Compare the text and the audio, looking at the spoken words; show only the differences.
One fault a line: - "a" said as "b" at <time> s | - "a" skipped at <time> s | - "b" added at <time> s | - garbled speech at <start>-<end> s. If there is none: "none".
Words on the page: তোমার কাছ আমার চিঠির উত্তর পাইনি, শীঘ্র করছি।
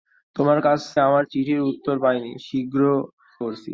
none